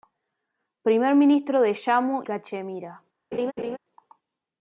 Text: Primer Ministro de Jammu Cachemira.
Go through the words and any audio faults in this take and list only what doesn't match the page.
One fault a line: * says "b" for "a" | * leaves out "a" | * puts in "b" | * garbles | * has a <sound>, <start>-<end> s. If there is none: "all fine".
* has a laugh, 3.3-3.8 s